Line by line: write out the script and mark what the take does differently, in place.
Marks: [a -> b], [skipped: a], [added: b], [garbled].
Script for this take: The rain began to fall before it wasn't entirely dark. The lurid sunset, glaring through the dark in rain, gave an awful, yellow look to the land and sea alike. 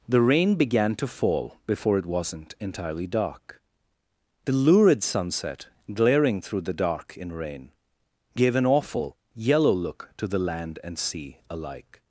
The rain began to fall before it wasn't entirely dark. The lurid sunset, glaring through the dark in rain, gave an awful, yellow look to the land and sea alike.